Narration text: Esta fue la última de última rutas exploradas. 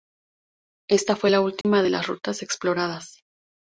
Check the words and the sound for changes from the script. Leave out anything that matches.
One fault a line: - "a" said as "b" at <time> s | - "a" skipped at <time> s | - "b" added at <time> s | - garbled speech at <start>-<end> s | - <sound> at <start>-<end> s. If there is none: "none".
- dropout at 1.6-1.6 s
- "última" said as "las" at 1.9 s